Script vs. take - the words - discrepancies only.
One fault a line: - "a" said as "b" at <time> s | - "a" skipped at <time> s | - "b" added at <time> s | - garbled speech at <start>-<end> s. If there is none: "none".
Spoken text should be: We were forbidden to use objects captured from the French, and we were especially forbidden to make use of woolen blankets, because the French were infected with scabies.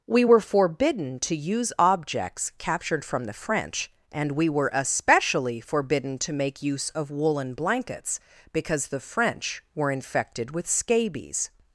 none